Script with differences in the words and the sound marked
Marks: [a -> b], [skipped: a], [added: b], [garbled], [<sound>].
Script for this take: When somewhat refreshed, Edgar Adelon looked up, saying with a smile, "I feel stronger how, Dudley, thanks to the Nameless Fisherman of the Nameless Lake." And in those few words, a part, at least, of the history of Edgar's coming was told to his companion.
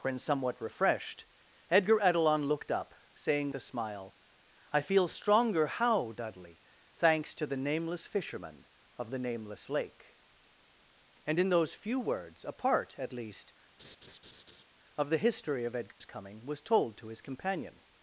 When somewhat refreshed, Edgar Adelon looked up, saying [skipped: with] a smile, "I feel stronger how, Dudley, thanks to the Nameless Fisherman of the Nameless Lake." And in those few words, a part, at least, [laugh] of the history of Edgar's [dropout] coming was told to his companion.